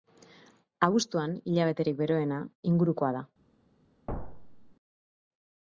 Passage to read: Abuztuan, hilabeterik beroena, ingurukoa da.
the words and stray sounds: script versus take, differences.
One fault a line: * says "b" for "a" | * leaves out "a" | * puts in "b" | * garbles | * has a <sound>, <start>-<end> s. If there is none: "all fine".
* has a thud, 4.1-4.7 s